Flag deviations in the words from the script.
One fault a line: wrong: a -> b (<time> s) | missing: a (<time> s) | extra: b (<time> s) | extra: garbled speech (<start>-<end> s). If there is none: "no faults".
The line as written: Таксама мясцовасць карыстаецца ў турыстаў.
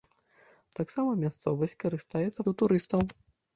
no faults